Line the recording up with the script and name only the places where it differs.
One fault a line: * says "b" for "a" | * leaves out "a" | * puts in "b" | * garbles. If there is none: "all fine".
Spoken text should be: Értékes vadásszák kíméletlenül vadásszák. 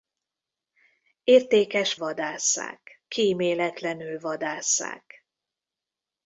all fine